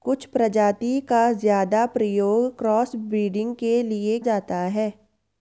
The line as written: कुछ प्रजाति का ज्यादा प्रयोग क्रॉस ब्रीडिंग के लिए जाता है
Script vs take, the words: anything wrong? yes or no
no